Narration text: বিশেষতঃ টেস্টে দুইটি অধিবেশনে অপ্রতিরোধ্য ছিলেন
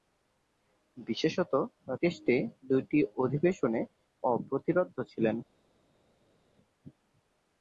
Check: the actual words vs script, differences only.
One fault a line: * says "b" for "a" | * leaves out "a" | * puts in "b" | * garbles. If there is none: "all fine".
all fine